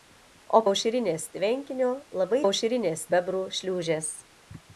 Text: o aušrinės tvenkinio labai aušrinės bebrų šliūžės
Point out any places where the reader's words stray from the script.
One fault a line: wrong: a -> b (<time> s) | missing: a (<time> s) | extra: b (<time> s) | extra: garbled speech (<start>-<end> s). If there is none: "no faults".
no faults